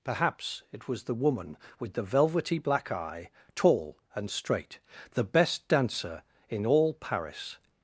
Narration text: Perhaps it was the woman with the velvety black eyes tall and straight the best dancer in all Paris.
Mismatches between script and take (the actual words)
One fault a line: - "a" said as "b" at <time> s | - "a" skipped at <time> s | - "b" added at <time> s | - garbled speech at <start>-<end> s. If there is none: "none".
- "eyes" said as "eye" at 2.9 s